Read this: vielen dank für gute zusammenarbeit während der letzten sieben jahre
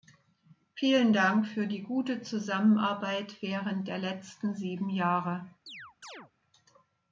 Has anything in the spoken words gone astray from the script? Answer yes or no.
yes